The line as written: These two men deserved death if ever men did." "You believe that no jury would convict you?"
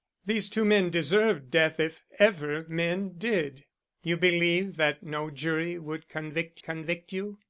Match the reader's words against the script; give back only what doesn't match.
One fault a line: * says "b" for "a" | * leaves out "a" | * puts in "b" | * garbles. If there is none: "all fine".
* puts in "convict"